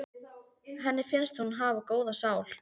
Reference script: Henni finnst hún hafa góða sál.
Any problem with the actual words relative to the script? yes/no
no